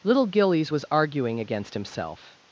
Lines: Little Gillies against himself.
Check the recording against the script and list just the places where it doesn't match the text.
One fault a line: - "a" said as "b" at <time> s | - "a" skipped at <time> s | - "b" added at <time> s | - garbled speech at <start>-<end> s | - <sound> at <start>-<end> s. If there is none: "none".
- "was arguing" added at 0.7 s